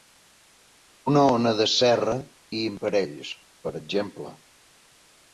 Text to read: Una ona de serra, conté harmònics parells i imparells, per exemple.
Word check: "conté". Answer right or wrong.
wrong